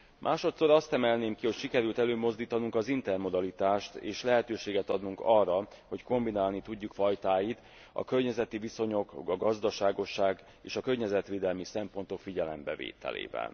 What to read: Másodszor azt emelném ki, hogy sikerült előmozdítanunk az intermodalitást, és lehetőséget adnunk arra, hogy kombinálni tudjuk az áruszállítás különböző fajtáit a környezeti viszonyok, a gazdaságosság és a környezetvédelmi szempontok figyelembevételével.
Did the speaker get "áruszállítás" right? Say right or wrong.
wrong